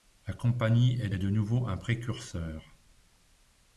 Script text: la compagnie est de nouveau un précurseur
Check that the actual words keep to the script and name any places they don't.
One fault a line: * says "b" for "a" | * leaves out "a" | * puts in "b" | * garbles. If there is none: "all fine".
* puts in "est"